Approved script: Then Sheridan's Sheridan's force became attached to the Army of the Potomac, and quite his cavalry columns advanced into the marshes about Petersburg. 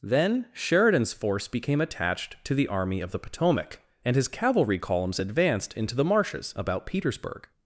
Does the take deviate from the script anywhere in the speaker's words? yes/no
yes